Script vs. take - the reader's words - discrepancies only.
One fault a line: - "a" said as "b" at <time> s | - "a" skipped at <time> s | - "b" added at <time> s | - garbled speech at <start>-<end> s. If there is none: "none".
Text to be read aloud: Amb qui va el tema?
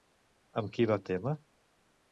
none